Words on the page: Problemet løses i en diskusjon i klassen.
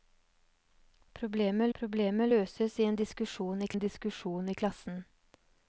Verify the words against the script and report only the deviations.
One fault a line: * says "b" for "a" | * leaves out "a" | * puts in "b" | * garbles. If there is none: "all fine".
* puts in "problemet"
* puts in "en diskusjon i"